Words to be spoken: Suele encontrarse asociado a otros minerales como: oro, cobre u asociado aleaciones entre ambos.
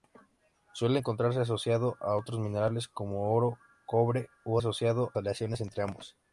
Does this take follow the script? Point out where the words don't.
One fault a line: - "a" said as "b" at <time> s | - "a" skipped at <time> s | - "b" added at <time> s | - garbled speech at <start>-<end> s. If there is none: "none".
none